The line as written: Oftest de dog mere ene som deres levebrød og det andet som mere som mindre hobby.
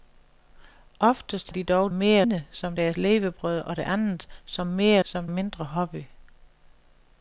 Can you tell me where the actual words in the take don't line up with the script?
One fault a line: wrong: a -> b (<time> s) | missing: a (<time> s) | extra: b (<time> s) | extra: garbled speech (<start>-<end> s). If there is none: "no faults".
no faults